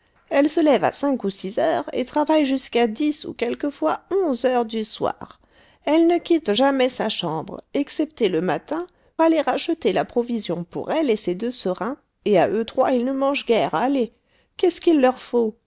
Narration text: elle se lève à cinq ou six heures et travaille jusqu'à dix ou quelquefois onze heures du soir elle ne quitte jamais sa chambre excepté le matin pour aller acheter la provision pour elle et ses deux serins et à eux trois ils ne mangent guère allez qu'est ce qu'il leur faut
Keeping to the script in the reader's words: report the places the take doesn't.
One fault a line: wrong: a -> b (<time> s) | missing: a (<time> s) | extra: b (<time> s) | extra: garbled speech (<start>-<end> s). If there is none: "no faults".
missing: pour (8.9 s)